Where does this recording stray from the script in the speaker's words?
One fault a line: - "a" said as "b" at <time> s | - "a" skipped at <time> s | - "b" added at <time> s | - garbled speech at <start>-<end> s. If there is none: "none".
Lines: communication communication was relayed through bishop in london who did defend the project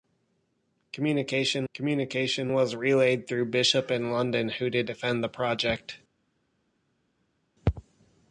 none